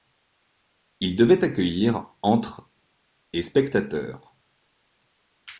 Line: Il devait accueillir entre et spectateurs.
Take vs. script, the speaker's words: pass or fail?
pass